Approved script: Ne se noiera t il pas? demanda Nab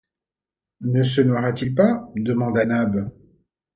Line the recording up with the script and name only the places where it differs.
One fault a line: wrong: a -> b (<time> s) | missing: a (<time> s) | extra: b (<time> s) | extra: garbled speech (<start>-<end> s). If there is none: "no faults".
no faults